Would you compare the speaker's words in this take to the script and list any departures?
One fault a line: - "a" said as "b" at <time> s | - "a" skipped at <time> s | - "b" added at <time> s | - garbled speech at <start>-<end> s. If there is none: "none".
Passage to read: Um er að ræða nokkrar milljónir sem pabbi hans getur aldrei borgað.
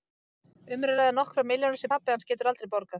none